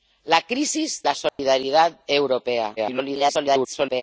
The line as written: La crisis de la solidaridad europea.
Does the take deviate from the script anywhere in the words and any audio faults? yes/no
yes